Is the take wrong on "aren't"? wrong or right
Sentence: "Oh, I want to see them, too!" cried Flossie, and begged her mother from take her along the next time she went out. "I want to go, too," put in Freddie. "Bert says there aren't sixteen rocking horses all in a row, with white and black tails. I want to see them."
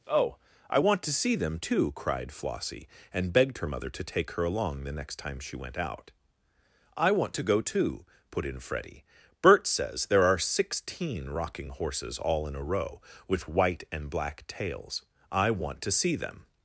wrong